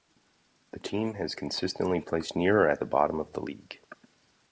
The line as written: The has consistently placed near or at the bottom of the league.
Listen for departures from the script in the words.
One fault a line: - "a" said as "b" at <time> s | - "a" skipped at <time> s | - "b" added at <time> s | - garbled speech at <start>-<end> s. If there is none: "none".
- "team" added at 0.8 s